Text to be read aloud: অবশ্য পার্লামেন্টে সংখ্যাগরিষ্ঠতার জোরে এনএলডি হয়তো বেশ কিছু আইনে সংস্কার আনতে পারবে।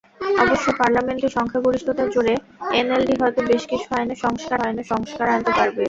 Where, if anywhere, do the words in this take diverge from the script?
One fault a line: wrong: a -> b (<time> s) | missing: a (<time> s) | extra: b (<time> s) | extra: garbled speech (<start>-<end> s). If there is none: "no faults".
extra: আইনে সংস্কার (4.6 s)